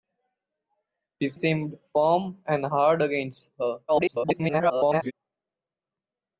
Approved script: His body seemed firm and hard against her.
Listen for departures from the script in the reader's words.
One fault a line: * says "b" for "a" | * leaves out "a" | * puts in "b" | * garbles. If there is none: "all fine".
* leaves out "body"
* garbles